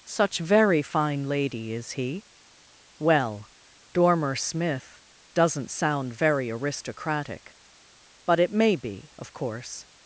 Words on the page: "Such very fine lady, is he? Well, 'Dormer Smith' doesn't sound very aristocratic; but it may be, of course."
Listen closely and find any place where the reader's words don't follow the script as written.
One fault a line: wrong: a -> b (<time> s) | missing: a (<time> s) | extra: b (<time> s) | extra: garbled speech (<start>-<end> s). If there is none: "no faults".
no faults